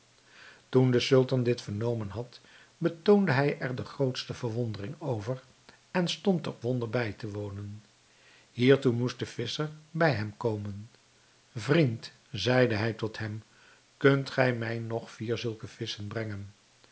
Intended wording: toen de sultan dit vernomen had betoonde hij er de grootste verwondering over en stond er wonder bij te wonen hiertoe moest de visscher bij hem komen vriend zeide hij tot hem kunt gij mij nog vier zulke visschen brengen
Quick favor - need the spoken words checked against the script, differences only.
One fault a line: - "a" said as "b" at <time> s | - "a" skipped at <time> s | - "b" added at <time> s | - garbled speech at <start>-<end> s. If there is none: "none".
none